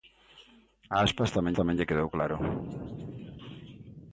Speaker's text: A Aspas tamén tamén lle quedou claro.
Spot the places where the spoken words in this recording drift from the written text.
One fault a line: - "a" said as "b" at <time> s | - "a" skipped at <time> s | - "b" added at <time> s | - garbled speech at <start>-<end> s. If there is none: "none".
none